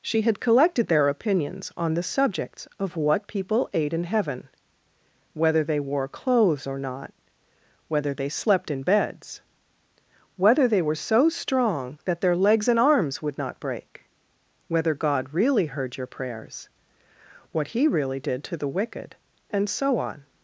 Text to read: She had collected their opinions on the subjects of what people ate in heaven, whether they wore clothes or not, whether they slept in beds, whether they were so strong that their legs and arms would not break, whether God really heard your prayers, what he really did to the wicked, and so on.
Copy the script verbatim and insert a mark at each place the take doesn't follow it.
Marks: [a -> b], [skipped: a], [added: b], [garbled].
She had collected their opinions on the subjects of what people ate in heaven, whether they wore clothes or not, whether they slept in beds, whether they were so strong that their legs and arms would not break, whether God really heard your prayers, what he really did to the wicked, and so on.